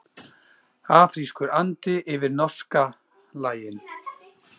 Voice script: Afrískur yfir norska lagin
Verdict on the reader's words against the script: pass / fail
fail